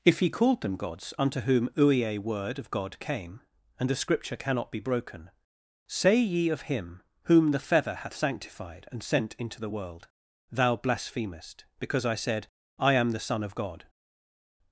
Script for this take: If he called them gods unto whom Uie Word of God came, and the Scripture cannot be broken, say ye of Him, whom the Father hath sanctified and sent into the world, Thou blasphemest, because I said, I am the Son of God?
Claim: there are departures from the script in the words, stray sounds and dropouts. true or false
true